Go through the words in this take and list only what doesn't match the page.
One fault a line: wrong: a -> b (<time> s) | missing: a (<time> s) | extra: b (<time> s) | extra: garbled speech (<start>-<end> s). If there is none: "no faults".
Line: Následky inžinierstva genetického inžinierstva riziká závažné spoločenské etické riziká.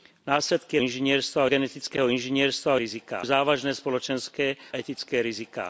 no faults